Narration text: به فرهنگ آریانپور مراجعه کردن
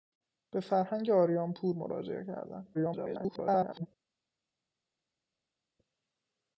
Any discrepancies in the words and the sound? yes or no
yes